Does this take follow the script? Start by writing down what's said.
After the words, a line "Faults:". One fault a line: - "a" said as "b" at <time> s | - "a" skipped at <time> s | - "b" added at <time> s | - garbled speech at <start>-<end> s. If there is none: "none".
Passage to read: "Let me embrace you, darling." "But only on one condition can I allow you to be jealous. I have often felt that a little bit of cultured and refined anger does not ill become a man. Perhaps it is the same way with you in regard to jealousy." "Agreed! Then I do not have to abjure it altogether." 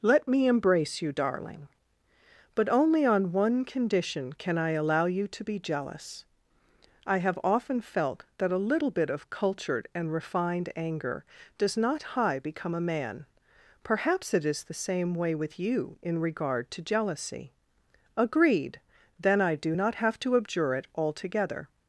"Let me embrace you, darling." "But only on one condition can I allow you to be jealous. I have often felt that a little bit of cultured and refined anger does not high become a man. Perhaps it is the same way with you in regard to jealousy." "Agreed! Then I do not have to abjure it altogether."
Faults:
- "ill" said as "high" at 12.1 s